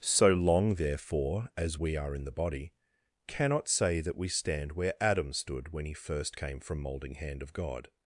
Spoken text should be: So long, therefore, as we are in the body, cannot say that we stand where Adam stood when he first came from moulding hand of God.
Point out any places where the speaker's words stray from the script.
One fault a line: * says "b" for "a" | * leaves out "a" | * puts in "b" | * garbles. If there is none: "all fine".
all fine